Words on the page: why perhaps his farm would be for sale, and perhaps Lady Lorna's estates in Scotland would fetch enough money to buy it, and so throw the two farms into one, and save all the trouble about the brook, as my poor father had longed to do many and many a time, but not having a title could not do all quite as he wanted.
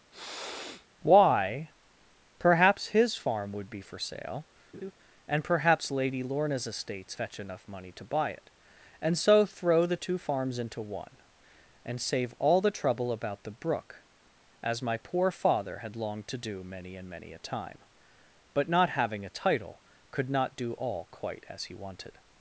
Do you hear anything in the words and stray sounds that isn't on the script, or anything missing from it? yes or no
yes